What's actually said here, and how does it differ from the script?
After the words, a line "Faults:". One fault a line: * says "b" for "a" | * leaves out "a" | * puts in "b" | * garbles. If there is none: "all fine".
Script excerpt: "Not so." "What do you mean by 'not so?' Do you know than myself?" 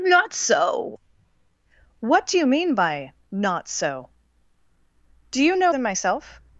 "Not so." "What do you mean by 'not so?' Do you know than myself?"
Faults:
all fine